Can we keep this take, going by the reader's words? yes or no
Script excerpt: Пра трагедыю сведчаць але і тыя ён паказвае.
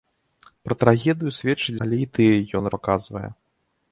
yes